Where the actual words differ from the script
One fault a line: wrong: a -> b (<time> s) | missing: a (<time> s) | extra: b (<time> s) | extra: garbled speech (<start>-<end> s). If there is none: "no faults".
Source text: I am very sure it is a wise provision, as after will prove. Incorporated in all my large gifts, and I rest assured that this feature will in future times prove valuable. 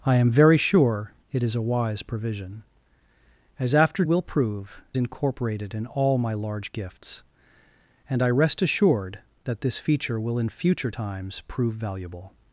no faults